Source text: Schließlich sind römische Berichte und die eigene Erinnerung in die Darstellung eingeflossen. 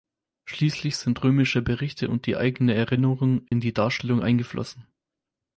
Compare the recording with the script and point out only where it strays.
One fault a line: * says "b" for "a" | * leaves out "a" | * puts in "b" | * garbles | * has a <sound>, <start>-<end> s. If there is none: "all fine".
* has a dropout, 3.5-3.5 s